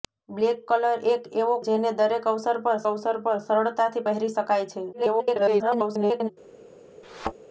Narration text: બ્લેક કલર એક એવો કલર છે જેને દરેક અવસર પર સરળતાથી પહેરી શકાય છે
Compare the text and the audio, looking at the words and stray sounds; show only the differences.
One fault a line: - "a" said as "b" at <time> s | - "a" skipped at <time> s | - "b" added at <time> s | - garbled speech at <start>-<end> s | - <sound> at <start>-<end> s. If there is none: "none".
- "કલર છે જેને દરેક" said as "જેને દરેક અવસર પર" at 1.6 s
- garbled speech at 4.9-6.3 s
- thud at 7.0-7.3 s